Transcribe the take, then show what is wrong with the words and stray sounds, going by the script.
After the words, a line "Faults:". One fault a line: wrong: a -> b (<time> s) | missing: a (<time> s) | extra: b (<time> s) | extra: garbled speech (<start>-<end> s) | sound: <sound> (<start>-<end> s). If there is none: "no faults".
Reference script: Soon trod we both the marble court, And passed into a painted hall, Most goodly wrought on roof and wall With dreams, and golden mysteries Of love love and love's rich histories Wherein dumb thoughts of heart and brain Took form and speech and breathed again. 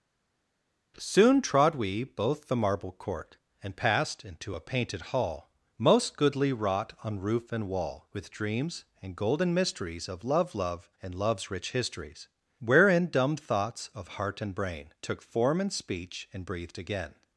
Soon trod we both the marble court, And passed into a painted hall, Most goodly wrought on roof and wall With dreams, and golden mysteries Of love love and love's rich histories Wherein dumb thoughts of heart and brain Took form and speech and breathed again.
Faults:
no faults